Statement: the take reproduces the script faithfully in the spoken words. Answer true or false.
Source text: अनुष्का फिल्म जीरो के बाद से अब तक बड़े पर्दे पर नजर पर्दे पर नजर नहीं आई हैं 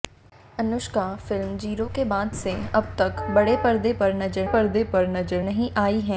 true